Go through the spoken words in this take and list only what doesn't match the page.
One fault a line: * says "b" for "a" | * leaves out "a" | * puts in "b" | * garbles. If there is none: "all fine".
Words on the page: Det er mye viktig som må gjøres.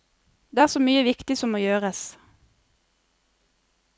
* puts in "så"